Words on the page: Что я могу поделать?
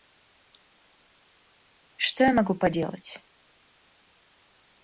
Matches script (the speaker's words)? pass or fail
pass